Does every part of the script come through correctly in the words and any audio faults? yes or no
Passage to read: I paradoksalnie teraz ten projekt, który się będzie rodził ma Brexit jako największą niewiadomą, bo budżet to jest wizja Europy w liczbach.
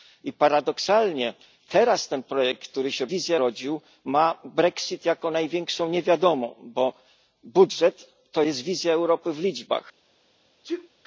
no